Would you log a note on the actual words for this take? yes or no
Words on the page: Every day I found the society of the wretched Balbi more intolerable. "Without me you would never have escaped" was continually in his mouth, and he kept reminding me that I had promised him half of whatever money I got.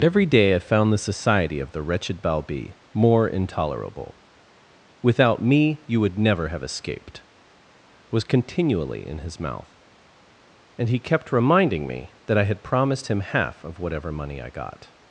no